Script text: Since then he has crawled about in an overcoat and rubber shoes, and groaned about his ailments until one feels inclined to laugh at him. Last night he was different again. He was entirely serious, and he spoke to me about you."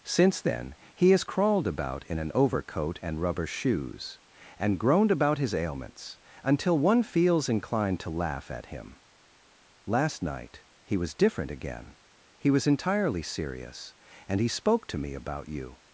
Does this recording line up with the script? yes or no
yes